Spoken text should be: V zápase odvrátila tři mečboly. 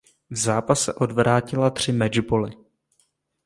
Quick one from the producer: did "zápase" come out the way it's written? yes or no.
yes